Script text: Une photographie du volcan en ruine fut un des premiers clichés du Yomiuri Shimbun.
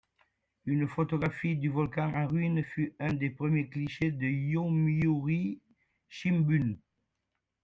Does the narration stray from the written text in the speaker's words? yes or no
no